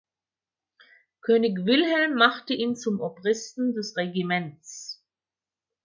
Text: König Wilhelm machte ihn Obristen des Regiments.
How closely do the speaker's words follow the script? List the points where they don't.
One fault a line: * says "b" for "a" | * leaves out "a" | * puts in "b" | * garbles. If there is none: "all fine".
* puts in "zum"